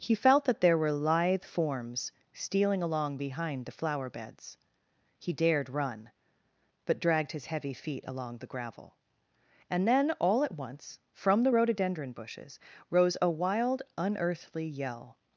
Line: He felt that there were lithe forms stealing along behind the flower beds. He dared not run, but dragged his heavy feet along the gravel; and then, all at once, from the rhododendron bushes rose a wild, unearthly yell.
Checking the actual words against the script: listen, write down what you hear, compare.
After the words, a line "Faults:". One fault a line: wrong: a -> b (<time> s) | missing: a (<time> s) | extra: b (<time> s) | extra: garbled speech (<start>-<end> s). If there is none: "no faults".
He felt that there were lithe forms stealing along behind the flower beds. He dared run, but dragged his heavy feet along the gravel; and then, all at once, from the rhododendron bushes rose a wild, unearthly yell.
Faults:
missing: not (5.7 s)